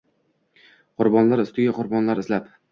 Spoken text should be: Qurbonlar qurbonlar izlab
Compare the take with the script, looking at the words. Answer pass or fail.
fail